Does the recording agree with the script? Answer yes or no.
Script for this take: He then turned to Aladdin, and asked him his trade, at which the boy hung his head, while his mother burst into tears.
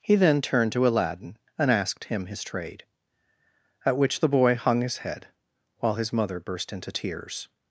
yes